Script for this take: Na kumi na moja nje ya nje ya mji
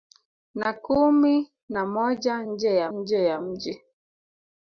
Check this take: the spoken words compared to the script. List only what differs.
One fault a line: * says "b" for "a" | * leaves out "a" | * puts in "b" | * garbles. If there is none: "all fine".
all fine